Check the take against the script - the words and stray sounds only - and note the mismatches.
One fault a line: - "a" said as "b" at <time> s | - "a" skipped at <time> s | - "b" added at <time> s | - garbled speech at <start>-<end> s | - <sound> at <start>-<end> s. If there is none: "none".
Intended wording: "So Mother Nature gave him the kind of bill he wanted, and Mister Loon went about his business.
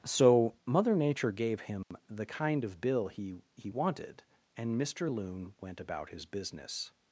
- dropout at 1.8-1.9 s
- "he" added at 3.5 s